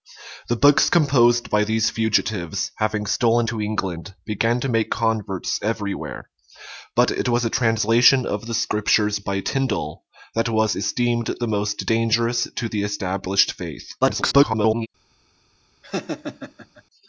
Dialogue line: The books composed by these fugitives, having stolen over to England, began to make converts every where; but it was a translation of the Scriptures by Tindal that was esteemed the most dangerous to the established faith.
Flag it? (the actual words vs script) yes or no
yes